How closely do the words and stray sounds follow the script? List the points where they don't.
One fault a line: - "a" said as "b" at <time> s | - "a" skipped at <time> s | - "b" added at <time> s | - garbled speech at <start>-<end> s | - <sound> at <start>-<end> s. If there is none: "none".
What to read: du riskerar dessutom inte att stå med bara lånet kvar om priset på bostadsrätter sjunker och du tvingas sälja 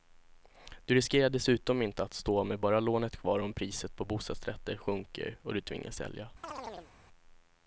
- chirp at 6.4-6.9 s